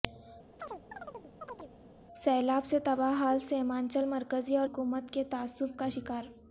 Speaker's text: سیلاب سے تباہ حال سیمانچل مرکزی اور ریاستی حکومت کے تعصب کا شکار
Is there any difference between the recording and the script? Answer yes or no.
yes